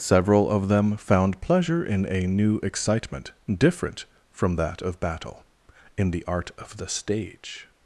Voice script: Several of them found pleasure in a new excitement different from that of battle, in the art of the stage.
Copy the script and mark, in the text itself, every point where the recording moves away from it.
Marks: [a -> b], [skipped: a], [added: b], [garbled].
Several of them found pleasure in a new excitement different from that of battle, in the art of the stage.